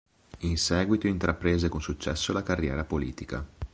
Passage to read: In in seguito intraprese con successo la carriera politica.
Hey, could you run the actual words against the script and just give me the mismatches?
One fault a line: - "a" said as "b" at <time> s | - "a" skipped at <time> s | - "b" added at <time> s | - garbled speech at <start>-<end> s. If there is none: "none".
- "in" skipped at 0.6 s